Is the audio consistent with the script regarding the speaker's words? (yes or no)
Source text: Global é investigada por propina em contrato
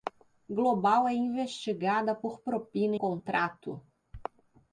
no